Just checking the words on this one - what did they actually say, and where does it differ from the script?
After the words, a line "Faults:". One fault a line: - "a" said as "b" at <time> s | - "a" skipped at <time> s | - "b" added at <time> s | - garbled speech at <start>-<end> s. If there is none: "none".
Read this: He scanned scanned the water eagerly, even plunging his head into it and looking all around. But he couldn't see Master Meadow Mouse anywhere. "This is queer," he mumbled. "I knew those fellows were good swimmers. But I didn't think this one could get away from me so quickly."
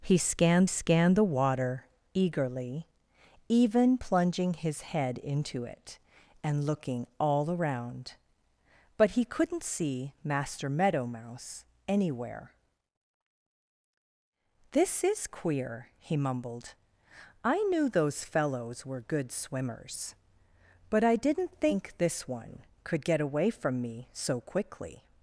He scanned scanned the water eagerly, even plunging his head into it and looking all around. But he couldn't see Master Meadow Mouse anywhere. "This is queer," he mumbled. "I knew those fellows were good swimmers. But I didn't think this one could get away from me so quickly."
Faults:
none